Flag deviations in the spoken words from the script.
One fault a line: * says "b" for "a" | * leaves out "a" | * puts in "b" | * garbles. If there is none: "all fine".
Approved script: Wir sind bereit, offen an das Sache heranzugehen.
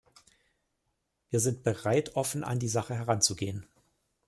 * says "die" for "das"